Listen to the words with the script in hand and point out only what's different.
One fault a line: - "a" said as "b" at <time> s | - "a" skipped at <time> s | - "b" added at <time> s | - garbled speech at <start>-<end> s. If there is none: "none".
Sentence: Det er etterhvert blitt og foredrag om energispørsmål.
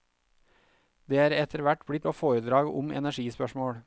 none